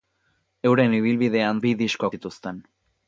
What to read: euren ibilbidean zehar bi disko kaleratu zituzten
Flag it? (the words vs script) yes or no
yes